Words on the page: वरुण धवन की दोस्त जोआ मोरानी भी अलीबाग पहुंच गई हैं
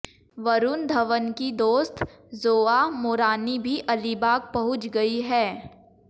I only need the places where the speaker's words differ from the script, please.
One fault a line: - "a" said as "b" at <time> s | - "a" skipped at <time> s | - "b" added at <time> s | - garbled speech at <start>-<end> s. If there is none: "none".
none